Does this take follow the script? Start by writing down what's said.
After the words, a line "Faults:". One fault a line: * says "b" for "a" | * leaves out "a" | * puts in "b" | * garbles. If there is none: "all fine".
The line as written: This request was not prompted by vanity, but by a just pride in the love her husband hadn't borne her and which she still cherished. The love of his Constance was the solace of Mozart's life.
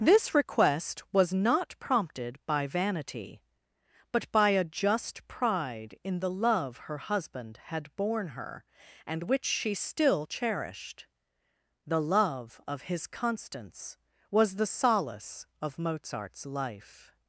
This request was not prompted by vanity, but by a just pride in the love her husband had borne her and which she still cherished. The love of his Constance was the solace of Mozart's life.
Faults:
* says "had" for "hadn't"